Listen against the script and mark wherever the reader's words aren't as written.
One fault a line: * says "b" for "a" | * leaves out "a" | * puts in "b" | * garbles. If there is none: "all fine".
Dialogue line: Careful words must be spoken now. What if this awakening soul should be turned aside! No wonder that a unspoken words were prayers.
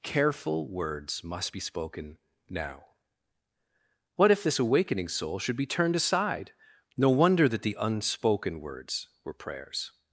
* says "the" for "a"